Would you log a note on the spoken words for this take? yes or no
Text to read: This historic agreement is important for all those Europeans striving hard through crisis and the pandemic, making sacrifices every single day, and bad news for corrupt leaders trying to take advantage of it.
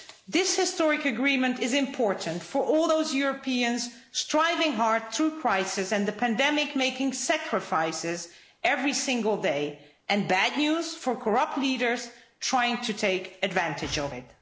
no